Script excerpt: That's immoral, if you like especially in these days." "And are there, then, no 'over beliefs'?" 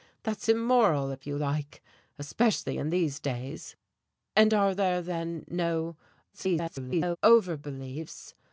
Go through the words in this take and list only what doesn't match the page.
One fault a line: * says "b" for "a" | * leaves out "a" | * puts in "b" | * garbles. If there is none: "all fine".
* garbles